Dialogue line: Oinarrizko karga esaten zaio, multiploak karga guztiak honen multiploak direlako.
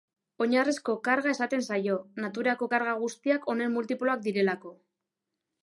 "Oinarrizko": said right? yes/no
yes